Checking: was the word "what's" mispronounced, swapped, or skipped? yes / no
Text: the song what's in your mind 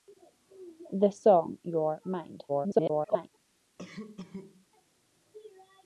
yes